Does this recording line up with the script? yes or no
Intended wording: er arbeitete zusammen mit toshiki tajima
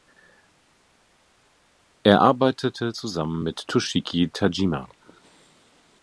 yes